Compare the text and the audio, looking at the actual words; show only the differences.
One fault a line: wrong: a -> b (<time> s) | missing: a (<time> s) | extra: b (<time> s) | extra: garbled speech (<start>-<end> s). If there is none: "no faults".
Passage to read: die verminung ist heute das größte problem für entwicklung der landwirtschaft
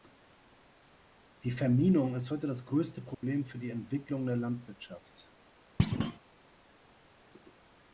extra: die (3.6 s)